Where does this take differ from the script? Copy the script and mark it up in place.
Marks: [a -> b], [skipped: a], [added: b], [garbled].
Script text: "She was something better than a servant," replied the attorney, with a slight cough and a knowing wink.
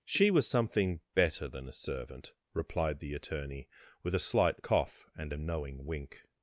"She was something better than a servant," replied the attorney, with a slight cough and a knowing wink.